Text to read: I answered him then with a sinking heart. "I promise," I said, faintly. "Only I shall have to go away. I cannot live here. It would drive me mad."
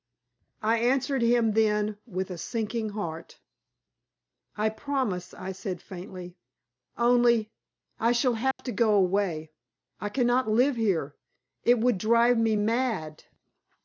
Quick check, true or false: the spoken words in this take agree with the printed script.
true